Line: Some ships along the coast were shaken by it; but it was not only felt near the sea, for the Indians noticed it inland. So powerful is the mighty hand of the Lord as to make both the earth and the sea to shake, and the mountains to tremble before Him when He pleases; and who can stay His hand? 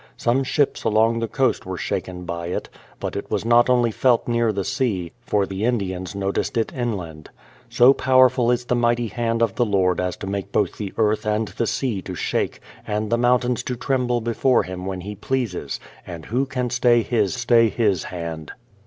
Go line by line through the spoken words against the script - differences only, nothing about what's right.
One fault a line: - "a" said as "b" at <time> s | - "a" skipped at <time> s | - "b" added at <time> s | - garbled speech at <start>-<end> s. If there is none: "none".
- "stay His" added at 17.4 s